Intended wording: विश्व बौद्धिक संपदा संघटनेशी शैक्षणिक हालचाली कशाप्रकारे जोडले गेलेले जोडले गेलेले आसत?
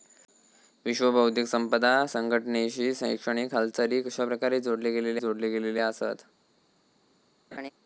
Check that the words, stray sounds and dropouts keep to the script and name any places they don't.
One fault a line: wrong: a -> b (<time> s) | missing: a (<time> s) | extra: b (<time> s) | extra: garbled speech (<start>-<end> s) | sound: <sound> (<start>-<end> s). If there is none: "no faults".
sound: laugh (7.5-7.7 s)